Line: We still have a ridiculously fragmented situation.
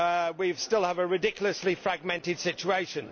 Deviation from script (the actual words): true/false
false